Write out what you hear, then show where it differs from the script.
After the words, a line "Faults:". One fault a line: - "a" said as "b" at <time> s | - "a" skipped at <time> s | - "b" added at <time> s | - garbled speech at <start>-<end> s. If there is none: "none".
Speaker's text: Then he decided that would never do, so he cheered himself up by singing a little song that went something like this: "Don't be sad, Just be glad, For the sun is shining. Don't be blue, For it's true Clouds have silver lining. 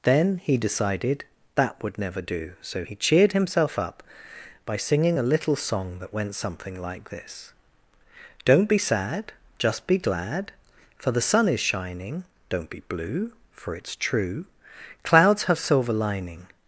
Then he decided that would never do, so he cheered himself up by singing a little song that went something like this: "Don't be sad, Just be glad, For the sun is shining. Don't be blue, For it's true Clouds have silver lining.
Faults:
none